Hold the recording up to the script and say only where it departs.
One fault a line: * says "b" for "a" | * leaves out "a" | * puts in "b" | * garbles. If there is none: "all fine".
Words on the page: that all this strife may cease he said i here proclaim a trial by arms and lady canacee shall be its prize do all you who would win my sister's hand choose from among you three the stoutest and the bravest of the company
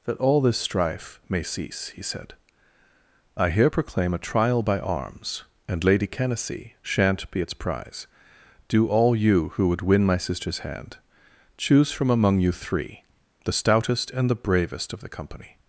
* says "shan't" for "shall"